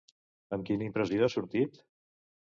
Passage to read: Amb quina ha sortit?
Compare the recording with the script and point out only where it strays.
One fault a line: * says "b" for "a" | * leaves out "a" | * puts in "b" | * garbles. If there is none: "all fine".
* puts in "impressió"